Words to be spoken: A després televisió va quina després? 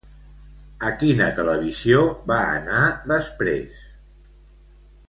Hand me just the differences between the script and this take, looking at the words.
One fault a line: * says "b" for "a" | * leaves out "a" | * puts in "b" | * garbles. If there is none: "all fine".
* says "quina" for "després"
* says "anar" for "quina"